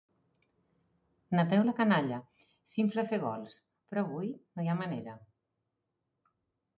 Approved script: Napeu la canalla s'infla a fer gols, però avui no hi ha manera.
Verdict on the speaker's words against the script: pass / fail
pass